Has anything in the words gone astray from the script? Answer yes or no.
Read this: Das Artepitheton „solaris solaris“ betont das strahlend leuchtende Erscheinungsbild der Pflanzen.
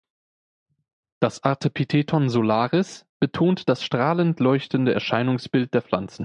yes